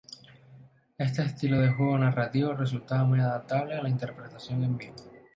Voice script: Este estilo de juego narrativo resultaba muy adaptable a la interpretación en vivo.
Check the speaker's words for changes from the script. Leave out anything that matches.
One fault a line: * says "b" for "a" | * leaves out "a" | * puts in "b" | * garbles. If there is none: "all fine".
all fine